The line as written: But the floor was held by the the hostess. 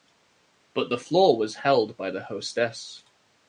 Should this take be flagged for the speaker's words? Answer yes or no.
yes